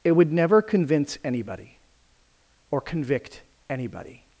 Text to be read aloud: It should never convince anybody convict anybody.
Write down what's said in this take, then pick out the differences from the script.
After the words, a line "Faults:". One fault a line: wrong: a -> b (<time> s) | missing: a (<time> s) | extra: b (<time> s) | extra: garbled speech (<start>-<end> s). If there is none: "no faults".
It would never convince anybody or convict anybody.
Faults:
wrong: should -> would (0.1 s)
extra: or (2.7 s)